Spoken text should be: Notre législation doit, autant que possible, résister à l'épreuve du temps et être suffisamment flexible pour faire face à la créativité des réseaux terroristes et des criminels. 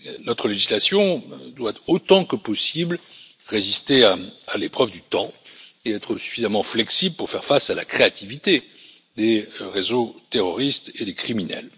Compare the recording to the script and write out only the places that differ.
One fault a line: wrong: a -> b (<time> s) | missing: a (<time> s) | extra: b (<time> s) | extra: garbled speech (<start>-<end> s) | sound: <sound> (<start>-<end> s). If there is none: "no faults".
no faults